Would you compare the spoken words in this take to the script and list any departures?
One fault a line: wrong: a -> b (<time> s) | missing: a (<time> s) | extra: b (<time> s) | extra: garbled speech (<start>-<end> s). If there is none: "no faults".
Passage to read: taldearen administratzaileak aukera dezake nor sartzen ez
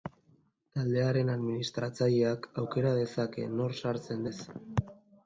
no faults